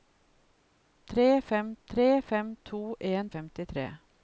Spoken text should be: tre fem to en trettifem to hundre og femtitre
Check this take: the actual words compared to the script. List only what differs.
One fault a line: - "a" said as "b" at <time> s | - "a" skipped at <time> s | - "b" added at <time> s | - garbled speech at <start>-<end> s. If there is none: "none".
- "to en trettifem" said as "tre fem" at 1.9 s
- "hundre" said as "en" at 3.1 s